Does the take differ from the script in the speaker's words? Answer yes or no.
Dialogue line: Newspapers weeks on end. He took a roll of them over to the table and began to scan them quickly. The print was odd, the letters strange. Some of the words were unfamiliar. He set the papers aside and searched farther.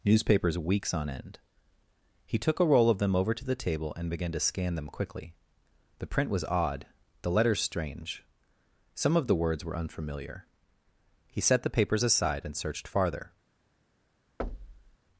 no